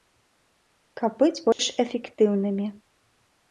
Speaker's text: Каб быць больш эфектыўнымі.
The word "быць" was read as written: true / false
true